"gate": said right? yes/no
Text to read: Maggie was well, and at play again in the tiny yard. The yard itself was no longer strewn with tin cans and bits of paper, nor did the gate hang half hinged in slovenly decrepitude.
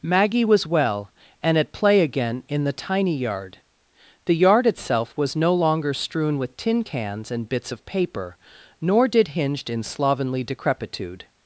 no